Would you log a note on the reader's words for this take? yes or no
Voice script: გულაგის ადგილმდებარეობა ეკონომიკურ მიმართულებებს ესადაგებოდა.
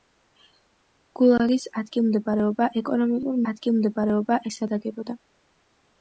yes